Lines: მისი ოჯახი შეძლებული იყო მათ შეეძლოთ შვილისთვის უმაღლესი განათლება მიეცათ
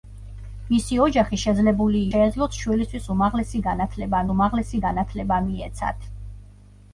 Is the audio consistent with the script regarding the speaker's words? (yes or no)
no